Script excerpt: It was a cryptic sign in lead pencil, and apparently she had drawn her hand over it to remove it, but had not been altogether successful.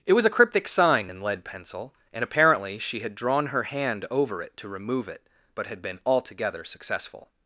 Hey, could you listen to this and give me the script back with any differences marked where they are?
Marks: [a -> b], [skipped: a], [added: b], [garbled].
It was a cryptic sign in lead pencil, and apparently she had drawn her hand over it to remove it, but had [skipped: not] been altogether successful.